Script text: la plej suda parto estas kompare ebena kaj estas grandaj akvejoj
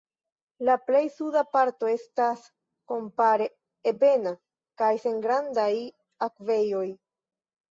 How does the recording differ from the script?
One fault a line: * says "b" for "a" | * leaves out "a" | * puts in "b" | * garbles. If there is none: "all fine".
* says "sen" for "estas"